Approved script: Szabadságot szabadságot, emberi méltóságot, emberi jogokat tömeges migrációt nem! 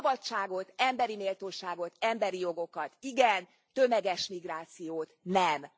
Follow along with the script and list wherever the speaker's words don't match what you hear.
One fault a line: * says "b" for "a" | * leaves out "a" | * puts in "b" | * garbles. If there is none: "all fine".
* leaves out "szabadságot"
* puts in "igen"